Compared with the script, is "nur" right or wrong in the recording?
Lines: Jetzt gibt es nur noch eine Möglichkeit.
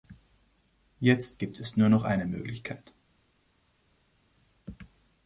right